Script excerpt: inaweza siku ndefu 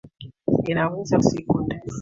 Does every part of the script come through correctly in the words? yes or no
yes